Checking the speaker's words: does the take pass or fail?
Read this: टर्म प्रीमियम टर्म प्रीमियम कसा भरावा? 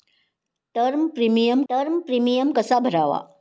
pass